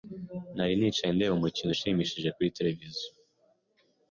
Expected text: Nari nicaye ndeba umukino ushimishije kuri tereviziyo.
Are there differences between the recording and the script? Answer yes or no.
no